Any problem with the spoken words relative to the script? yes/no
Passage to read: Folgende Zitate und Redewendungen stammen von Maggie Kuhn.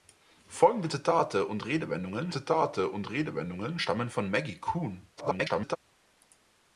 yes